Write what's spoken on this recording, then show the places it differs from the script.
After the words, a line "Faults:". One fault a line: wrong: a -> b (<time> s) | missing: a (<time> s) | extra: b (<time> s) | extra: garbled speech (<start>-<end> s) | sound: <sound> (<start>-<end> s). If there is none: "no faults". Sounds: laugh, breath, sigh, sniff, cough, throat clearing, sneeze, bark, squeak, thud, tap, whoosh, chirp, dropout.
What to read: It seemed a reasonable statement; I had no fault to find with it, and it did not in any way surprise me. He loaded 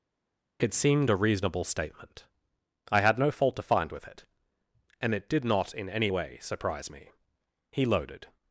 It seemed a reasonable statement; I had no fault to find with it, and it did not in any way surprise me. He loaded
Faults:
no faults